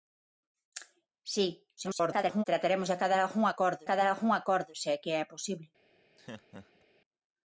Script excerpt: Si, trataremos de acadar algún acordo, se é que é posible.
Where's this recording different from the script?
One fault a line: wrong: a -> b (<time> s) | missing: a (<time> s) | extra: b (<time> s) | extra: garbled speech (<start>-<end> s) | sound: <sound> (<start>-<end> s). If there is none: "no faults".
extra: garbled speech (1.8-2.4 s)
extra: acadar algún acordo (3.8 s)
sound: laugh (6.2-6.9 s)